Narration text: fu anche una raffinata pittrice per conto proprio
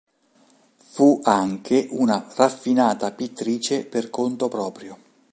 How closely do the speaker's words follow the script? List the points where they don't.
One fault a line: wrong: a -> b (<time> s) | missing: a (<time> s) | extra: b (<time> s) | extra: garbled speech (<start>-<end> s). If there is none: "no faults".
no faults